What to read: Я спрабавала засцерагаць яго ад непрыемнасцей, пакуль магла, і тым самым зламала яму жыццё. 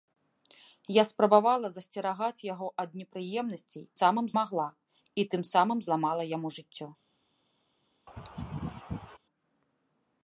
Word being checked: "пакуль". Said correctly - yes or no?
no